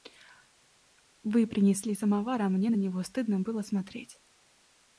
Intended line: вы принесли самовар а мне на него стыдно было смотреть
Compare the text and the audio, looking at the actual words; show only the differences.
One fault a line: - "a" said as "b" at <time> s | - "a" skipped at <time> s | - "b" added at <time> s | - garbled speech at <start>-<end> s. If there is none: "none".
none